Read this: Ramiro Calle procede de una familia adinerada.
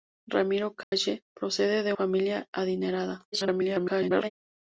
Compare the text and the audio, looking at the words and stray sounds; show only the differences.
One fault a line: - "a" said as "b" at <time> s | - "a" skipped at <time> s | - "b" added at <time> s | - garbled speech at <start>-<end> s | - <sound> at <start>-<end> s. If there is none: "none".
- dropout at 0.8-0.9 s
- "una" skipped at 1.9 s
- garbled speech at 3.3-4.3 s